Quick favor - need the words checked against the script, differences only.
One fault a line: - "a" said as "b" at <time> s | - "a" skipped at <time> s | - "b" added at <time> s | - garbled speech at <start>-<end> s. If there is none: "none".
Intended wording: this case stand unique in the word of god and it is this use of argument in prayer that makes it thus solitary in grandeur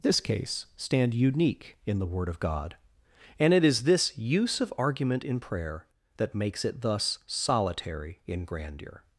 none